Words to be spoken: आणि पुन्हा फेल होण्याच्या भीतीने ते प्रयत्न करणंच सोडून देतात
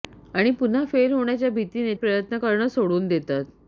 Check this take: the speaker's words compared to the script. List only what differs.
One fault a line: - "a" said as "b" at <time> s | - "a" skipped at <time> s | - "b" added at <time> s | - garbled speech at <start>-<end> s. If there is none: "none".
- "ते" skipped at 1.9 s